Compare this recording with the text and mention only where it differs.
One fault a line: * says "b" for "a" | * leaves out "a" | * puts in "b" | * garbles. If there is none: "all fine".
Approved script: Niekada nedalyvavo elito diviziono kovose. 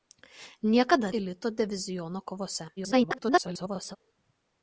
* leaves out "nedalyvavo"
* garbles